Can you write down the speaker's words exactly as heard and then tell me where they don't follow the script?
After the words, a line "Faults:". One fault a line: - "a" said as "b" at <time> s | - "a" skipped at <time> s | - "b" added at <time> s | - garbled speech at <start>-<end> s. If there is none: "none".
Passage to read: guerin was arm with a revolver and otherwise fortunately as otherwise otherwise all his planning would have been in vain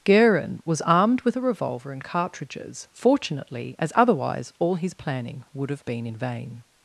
guerin was armed with a revolver and cartridges fortunately as otherwise all his planning would have been in vain
Faults:
- "arm" said as "armed" at 0.8 s
- "otherwise" said as "cartridges" at 2.0 s
- "otherwise" skipped at 4.5 s